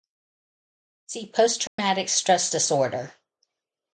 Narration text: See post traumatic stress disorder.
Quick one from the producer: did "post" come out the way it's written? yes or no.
yes